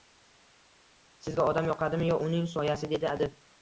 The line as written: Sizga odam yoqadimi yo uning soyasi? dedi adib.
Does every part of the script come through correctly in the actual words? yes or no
yes